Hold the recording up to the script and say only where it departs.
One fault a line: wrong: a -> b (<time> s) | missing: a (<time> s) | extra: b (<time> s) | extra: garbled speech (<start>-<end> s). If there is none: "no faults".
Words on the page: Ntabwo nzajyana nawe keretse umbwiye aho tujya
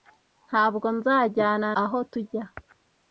missing: nawe keretse umbwiye (1.7 s)